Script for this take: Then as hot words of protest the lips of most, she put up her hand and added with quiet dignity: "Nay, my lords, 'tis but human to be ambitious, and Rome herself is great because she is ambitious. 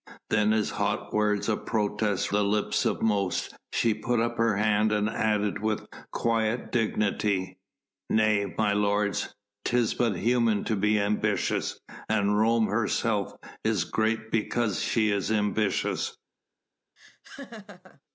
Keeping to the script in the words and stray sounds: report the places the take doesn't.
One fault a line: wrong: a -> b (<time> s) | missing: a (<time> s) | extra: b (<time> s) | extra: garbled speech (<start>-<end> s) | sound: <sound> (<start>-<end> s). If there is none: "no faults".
sound: laugh (17.0-18.0 s)